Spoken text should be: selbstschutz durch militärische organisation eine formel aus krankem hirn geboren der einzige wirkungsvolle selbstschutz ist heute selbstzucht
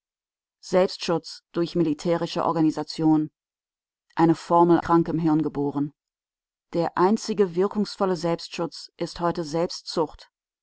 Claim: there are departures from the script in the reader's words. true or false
true